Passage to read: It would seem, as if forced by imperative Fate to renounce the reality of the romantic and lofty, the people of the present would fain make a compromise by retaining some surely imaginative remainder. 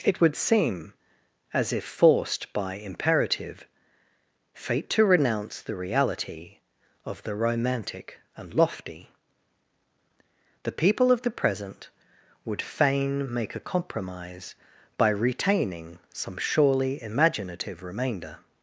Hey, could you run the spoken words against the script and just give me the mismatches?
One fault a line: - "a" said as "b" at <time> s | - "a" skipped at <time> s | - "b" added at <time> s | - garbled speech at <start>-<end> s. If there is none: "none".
none